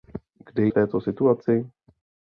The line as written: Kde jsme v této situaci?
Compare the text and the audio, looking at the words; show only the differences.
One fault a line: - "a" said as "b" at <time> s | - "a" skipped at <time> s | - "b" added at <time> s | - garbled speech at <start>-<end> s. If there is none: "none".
- "jsme" skipped at 0.7 s